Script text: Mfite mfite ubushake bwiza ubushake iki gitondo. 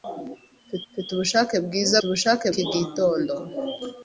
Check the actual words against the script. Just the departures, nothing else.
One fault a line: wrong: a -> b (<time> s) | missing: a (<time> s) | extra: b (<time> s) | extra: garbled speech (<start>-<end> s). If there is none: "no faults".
no faults